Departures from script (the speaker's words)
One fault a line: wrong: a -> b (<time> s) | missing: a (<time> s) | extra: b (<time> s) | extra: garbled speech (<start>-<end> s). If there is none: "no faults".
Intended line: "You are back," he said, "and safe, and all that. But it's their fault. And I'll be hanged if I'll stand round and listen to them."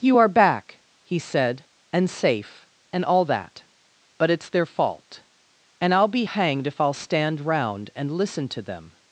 no faults